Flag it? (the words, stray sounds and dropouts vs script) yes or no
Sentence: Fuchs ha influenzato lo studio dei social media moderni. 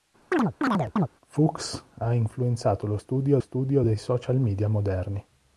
yes